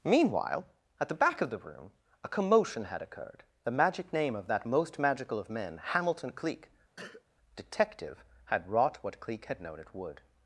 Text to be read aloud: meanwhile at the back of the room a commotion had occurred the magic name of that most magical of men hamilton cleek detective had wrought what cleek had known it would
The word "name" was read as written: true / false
true